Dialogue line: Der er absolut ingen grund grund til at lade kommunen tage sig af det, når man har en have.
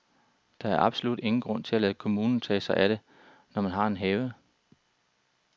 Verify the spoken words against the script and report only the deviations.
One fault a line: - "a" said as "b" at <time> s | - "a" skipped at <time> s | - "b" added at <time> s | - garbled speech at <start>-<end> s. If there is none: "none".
- "grund" skipped at 1.6 s